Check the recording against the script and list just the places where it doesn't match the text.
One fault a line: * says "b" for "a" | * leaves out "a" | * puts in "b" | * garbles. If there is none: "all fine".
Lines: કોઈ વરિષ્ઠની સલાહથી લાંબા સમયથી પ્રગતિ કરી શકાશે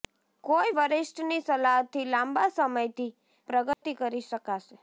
all fine